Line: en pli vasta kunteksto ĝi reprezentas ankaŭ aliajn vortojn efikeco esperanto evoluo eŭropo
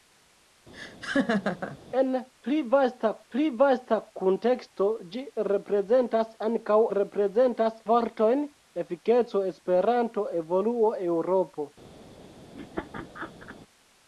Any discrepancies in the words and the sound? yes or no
yes